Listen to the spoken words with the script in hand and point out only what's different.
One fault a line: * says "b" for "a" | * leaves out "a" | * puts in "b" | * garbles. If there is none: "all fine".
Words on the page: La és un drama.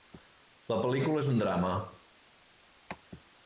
* puts in "pel·lícula"